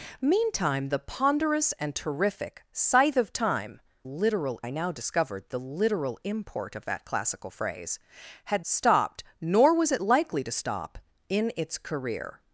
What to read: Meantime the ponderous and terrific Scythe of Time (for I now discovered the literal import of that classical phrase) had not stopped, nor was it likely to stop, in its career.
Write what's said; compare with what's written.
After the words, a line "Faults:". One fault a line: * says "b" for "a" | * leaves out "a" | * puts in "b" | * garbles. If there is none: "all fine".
Meantime the ponderous and terrific Scythe of Time (literal I now discovered the literal import of that classical phrase) had stopped, nor was it likely to stop, in its career.
Faults:
* says "literal" for "for"
* leaves out "not"